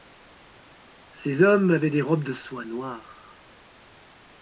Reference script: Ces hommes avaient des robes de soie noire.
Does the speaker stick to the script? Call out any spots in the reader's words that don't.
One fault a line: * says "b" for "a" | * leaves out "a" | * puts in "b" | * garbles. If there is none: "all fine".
all fine